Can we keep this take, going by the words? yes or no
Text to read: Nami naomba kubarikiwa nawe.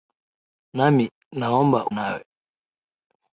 no